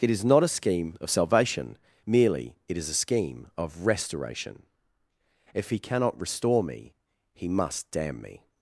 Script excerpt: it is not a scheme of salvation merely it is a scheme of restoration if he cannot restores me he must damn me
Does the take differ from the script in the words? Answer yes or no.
yes